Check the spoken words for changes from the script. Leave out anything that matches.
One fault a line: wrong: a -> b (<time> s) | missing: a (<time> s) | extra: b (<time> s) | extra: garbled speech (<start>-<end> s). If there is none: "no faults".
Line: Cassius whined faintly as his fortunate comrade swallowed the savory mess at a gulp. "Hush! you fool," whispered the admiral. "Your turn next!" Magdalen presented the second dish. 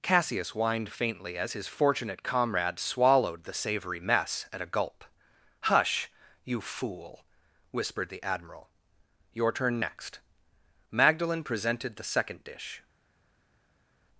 no faults